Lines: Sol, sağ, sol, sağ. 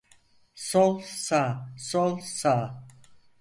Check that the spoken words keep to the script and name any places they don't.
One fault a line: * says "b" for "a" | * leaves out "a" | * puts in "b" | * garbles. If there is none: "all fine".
all fine